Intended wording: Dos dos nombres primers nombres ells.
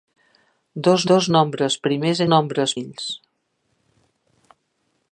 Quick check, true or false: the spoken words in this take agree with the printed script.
true